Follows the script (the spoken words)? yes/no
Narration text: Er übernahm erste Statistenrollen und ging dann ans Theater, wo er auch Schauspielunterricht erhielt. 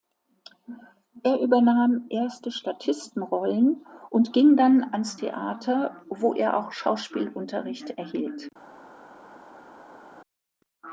yes